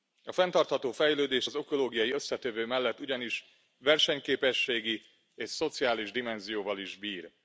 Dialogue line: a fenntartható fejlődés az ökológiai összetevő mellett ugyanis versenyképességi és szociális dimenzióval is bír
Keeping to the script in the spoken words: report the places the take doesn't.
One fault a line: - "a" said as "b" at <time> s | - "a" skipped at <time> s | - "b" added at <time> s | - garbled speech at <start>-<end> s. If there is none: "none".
none